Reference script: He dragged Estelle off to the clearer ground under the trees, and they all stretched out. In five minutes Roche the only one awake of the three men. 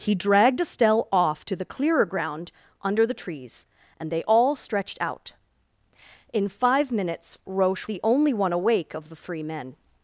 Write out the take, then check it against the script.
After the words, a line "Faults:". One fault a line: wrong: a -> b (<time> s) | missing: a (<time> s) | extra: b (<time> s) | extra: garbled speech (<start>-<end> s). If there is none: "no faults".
He dragged Estelle off to the clearer ground under the trees, and they all stretched out. In five minutes Roche the only one awake of the three men.
Faults:
no faults